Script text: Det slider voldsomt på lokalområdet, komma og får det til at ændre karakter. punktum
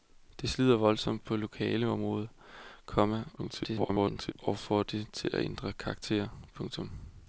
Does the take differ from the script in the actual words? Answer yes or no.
yes